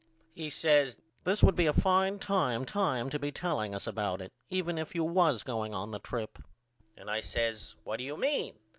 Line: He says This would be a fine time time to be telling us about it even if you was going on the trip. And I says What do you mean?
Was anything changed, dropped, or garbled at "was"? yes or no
no